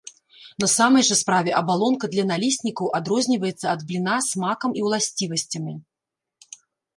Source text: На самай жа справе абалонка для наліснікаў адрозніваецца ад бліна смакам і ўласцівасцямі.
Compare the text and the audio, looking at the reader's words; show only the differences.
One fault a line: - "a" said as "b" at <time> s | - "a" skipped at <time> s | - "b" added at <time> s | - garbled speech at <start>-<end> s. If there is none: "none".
none